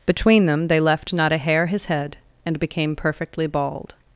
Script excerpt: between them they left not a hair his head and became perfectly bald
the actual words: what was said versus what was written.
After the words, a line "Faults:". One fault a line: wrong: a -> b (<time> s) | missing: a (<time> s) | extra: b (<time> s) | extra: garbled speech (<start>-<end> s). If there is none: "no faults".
between them they left not a hair his head and became perfectly bald
Faults:
no faults